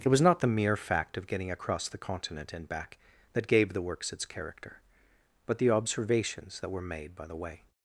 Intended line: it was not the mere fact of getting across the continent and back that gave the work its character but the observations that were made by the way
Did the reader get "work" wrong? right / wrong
wrong